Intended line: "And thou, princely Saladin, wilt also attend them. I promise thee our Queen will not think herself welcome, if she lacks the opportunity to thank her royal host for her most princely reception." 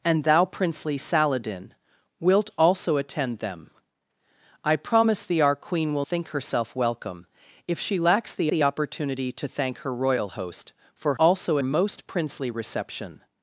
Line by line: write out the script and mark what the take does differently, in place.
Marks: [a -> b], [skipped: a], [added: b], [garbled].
"And thou, princely Saladin, wilt also attend them. I promise thee our Queen will [skipped: not] think herself welcome, if she lacks the [added: the] opportunity to thank her royal host for [her -> also] most princely reception."